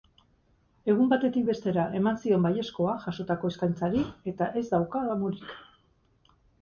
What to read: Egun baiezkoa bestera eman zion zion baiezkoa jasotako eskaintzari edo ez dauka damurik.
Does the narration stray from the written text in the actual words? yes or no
yes